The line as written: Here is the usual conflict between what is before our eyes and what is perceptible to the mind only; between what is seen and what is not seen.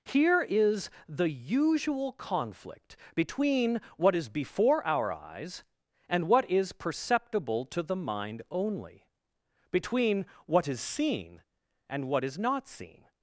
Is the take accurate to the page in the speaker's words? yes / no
yes